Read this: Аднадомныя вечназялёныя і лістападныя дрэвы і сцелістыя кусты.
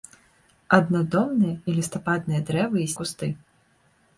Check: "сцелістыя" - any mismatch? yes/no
yes